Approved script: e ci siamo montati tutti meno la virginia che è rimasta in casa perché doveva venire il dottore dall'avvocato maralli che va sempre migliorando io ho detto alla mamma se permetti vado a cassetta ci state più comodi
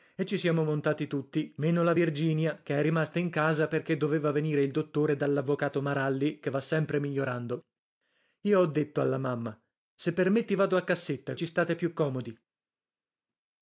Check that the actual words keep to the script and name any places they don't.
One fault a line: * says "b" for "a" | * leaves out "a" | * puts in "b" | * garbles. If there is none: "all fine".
all fine